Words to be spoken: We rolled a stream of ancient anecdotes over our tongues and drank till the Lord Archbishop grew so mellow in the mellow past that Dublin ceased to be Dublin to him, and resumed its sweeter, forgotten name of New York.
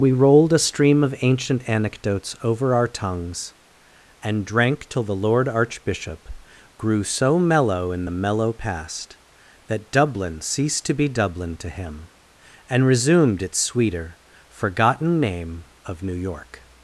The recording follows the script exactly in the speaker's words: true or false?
true